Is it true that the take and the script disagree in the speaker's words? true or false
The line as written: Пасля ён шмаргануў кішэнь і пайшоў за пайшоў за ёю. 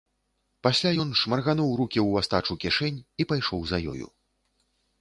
true